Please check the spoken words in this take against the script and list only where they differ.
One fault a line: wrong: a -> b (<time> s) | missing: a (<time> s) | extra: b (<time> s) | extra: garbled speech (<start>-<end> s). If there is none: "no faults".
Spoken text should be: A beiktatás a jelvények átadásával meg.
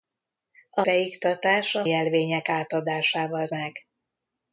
no faults